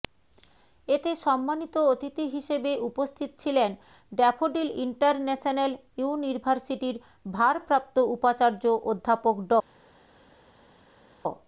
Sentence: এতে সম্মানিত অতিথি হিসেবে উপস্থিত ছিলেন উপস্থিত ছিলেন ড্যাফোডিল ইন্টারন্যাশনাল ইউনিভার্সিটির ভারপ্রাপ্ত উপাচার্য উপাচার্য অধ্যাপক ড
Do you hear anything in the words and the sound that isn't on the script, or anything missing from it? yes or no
yes